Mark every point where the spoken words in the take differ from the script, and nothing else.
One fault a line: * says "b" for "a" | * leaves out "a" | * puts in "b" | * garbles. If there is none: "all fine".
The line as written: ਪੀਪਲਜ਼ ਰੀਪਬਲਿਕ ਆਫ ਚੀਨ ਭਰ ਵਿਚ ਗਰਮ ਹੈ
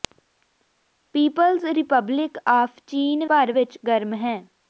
all fine